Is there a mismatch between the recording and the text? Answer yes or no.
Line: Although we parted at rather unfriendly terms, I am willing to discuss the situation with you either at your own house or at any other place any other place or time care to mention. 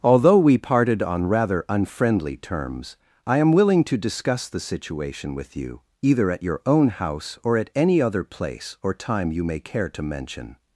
yes